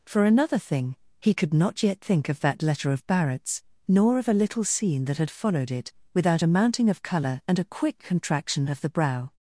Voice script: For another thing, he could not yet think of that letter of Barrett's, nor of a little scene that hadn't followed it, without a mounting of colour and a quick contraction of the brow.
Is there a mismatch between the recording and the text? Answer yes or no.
yes